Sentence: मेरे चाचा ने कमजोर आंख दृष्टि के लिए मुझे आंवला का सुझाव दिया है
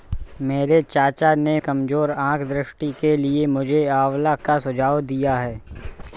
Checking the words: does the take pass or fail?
pass